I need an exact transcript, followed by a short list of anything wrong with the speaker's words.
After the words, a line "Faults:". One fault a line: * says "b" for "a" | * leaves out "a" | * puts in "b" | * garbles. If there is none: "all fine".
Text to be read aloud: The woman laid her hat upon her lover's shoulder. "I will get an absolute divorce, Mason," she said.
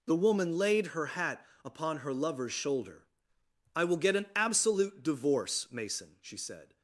The woman laid her hat upon her lover's shoulder. "I will get an absolute divorce, Mason," she said.
Faults:
all fine